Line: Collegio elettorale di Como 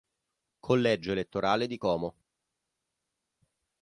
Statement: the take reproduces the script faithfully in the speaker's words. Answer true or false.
true